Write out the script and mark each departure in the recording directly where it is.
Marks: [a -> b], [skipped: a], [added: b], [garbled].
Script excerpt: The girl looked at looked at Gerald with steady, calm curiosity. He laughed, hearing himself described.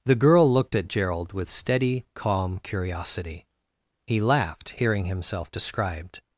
The girl looked at [skipped: looked at] Gerald with steady, calm curiosity. He laughed, hearing himself described.